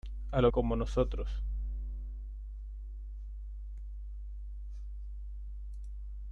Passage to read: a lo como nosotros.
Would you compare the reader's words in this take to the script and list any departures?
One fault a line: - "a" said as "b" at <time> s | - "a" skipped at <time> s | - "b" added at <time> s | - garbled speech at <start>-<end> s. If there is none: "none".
none